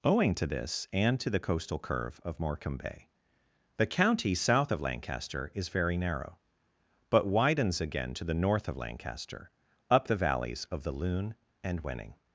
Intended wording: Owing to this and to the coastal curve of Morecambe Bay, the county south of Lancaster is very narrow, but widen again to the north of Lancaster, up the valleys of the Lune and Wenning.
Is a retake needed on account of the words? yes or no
yes